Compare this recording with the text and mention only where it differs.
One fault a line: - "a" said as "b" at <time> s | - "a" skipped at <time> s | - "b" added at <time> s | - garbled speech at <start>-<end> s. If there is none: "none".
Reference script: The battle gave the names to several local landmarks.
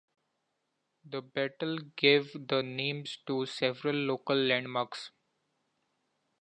none